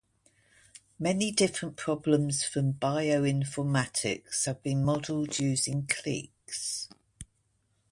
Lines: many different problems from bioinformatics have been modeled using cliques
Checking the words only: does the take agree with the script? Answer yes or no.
yes